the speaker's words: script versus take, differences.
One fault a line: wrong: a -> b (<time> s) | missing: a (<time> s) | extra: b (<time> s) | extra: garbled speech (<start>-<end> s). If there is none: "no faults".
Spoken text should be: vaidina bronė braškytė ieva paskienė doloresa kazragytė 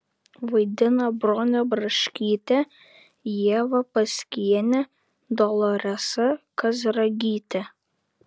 no faults